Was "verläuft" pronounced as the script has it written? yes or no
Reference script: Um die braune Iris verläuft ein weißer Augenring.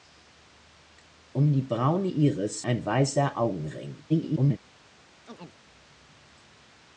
no